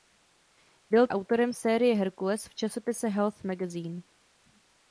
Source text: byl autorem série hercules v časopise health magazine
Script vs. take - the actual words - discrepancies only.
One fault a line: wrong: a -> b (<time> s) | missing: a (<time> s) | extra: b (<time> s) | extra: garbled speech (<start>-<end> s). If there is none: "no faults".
no faults